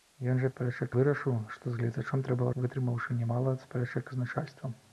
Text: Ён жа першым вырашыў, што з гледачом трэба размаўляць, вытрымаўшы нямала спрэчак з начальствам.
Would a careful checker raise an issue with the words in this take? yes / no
yes